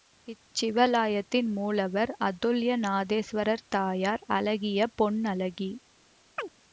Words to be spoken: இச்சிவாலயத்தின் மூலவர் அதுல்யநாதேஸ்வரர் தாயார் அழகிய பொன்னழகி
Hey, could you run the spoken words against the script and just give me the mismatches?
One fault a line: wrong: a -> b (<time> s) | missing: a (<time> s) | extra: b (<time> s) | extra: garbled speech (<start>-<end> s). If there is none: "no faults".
no faults